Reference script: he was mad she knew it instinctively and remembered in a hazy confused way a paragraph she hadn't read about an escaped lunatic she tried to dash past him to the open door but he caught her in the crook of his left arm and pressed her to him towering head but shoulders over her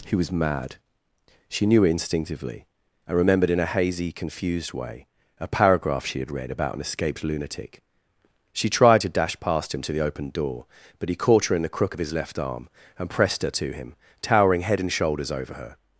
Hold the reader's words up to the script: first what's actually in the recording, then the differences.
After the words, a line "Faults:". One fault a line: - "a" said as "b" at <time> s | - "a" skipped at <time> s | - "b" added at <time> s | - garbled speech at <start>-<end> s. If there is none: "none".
he was mad she knew it instinctively and remembered in a hazy confused way a paragraph she had read about an escaped lunatic she tried to dash past him to the open door but he caught her in the crook of his left arm and pressed her to him towering head and shoulders over her
Faults:
- "hadn't" said as "had" at 6.2 s
- "but" said as "and" at 14.8 s